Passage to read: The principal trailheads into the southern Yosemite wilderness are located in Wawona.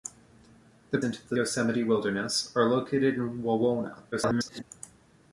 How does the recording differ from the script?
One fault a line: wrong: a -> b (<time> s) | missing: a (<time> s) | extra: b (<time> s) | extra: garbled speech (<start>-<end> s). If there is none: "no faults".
missing: principal trailheads (1.0 s)
missing: southern (1.4 s)
extra: garbled speech (4.1-4.6 s)